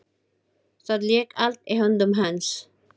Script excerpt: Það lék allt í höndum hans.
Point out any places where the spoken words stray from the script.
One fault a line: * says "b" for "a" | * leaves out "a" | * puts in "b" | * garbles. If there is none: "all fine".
all fine